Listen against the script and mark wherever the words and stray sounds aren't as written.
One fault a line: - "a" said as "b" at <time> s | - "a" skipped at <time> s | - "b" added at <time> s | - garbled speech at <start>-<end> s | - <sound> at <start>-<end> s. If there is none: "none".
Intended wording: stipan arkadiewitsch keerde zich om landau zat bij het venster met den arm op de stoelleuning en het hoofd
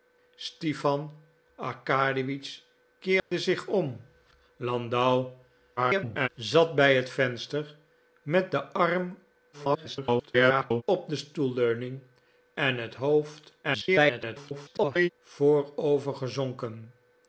- dropout at 3.2-3.3 s
- garbled speech at 5.8-6.3 s
- garbled speech at 9.5-10.8 s
- garbled speech at 13.6-15.1 s